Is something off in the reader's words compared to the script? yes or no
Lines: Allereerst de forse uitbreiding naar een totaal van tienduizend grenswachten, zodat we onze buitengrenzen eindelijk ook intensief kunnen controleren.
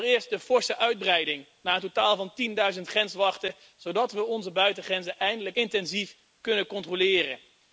yes